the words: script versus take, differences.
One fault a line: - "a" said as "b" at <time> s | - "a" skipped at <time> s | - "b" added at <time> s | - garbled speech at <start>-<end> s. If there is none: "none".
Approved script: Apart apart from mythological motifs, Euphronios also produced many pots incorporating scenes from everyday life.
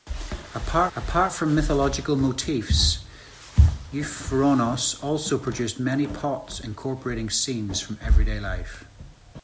none